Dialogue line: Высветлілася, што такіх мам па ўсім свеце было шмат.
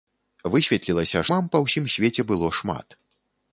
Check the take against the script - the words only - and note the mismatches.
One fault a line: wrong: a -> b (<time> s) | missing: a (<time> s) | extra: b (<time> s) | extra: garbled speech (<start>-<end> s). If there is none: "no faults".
missing: што такіх (1.2 s)